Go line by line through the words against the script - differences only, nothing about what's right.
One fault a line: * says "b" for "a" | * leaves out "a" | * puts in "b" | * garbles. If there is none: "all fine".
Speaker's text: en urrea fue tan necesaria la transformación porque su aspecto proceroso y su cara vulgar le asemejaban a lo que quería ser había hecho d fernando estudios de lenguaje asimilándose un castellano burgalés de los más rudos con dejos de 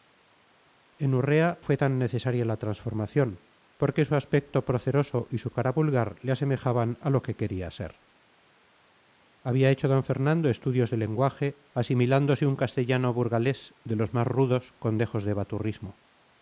all fine